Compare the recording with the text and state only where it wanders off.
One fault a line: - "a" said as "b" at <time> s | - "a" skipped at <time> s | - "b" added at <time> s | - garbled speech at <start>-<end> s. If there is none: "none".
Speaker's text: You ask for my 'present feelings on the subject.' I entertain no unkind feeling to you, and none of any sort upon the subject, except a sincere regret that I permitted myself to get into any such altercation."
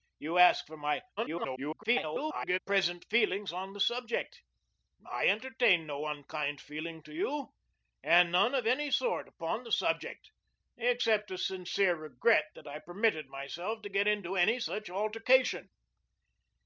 - garbled speech at 1.2-2.6 s